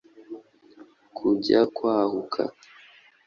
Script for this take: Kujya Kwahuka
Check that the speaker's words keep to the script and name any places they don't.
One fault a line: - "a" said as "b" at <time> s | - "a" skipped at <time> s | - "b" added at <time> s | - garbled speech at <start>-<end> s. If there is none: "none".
none